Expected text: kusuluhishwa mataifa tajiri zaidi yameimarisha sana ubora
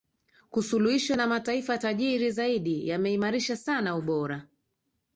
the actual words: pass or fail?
fail